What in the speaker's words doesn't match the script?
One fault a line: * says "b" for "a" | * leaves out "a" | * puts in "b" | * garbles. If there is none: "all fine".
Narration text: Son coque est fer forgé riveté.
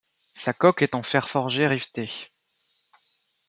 * says "Sa" for "Son"
* puts in "en"